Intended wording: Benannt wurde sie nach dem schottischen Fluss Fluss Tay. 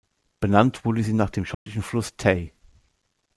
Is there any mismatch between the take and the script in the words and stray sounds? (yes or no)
yes